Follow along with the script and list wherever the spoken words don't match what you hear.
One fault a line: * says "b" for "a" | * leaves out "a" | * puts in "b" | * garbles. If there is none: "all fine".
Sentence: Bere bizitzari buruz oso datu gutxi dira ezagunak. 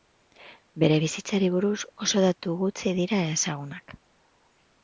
all fine